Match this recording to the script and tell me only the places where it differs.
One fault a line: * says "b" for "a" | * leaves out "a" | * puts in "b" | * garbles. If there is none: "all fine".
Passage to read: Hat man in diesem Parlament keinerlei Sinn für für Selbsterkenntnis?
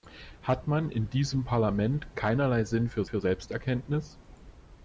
all fine